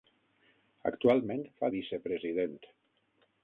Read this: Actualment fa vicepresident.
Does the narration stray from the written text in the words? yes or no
no